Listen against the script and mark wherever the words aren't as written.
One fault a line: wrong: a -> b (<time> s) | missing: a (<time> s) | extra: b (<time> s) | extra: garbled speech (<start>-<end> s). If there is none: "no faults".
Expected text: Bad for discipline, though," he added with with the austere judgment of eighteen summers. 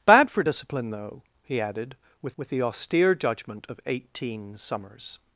no faults